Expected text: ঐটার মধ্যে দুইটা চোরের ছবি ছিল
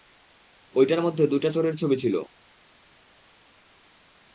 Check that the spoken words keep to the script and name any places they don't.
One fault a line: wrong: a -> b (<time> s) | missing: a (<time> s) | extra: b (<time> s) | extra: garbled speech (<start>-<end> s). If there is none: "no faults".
no faults